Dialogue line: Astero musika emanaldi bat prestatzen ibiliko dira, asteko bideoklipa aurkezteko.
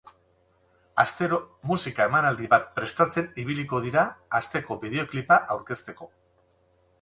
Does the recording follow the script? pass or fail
pass